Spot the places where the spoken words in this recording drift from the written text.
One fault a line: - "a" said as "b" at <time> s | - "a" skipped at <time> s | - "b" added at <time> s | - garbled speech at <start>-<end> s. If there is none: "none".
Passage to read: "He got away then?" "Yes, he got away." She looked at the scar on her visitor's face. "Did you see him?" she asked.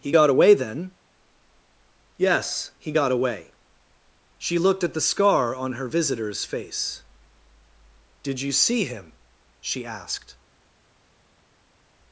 none